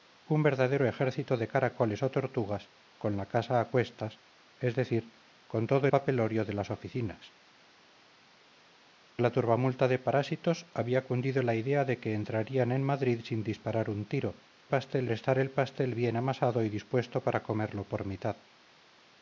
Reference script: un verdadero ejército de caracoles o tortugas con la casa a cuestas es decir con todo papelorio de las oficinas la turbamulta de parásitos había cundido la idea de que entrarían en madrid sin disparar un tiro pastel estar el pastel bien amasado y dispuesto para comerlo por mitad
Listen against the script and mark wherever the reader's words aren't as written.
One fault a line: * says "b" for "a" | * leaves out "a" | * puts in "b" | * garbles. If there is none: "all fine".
all fine